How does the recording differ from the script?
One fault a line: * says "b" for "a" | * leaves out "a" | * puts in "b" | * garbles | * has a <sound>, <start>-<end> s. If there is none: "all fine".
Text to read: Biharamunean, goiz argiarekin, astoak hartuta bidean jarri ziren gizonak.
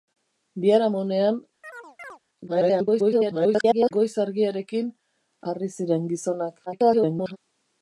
* has a chirp, 1.6-2.2 s
* garbles
* leaves out "astoak hartuta bidean"
* garbles